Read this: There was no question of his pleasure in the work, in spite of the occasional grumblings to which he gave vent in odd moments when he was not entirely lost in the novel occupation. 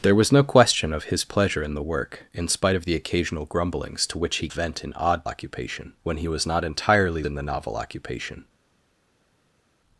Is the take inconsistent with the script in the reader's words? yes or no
yes